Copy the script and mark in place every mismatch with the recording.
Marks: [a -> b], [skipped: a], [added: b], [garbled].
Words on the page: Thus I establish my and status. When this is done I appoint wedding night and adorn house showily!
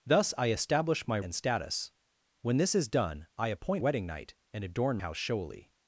Thus I establish my and status. When this is done I appoint wedding night and adorn house showily!